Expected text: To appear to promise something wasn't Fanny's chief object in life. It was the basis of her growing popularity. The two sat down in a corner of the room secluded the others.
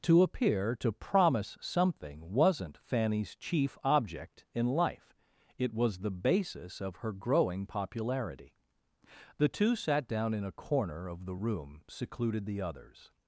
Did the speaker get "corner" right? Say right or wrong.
right